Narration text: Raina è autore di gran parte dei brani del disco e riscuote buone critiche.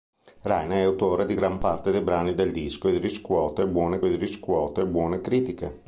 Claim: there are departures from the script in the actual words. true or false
true